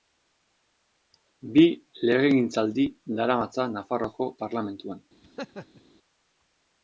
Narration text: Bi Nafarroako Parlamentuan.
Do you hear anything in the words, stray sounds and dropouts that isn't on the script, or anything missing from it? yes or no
yes